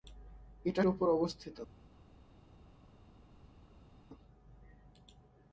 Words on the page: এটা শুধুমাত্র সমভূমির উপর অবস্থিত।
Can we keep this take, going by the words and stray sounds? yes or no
no